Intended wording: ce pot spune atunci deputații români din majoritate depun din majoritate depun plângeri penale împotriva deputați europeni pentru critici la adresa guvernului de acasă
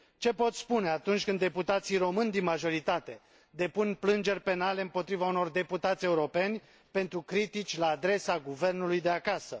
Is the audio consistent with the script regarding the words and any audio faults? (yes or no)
no